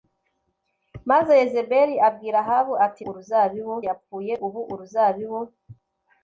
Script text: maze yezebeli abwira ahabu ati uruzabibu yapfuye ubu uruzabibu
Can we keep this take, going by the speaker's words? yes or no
yes